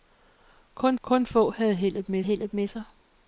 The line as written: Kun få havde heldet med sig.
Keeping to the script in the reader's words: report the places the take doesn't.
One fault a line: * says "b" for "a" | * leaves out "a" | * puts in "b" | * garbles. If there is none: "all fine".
* puts in "kun"
* puts in "heldet med"